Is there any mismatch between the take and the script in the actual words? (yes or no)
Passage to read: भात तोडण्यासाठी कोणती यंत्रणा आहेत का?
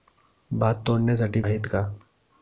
yes